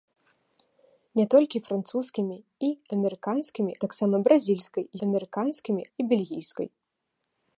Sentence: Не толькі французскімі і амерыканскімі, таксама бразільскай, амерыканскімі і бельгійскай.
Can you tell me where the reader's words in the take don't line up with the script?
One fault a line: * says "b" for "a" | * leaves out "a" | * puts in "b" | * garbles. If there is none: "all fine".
all fine